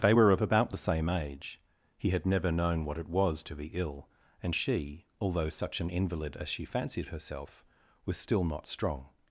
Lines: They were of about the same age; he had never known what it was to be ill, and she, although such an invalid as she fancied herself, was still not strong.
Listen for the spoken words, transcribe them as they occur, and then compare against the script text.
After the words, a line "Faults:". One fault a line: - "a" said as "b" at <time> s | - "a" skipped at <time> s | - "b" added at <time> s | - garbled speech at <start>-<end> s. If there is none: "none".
They were of about the same age; he had never known what it was to be ill, and she, although such an invalid as she fancied herself, was still not strong.
Faults:
none